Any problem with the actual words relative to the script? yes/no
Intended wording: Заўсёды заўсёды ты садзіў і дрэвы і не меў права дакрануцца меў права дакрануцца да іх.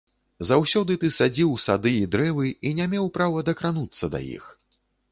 yes